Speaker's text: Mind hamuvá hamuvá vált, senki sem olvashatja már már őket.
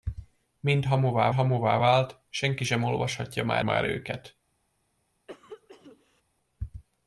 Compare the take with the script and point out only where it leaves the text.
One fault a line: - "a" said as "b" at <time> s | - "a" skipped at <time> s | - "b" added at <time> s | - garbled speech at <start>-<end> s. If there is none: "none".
none